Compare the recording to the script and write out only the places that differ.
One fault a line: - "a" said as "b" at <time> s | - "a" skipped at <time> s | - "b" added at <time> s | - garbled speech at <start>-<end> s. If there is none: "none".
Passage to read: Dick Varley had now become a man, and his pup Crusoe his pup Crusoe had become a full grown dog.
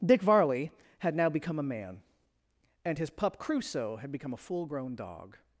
- "his pup Crusoe" skipped at 4.0 s